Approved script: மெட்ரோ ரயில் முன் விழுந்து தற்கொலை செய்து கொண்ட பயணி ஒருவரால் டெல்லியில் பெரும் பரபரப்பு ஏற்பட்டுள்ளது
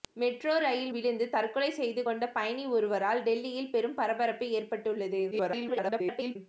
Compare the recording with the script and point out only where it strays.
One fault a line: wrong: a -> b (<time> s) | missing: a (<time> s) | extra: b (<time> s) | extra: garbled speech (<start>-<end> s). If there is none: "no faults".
missing: முன் (0.9 s)
extra: garbled speech (5.3-6.4 s)